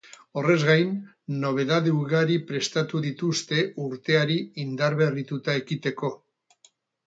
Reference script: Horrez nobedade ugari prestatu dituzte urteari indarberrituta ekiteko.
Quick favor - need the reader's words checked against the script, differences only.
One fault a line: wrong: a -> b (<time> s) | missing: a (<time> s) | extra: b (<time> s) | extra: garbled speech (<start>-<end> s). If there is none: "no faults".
extra: gain (0.7 s)